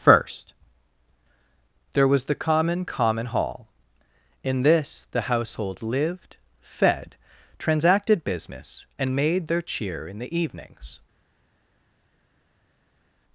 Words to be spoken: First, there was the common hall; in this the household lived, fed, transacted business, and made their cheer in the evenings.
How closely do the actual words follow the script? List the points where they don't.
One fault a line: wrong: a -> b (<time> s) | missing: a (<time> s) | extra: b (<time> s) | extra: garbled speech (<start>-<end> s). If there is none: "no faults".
extra: common (2.9 s)